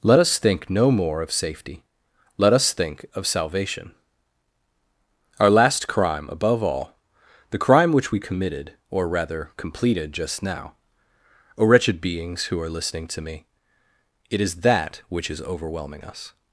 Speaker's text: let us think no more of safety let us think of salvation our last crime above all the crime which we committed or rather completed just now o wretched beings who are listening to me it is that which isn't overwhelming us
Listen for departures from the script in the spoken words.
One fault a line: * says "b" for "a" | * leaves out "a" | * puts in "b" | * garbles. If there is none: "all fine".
* says "is" for "isn't"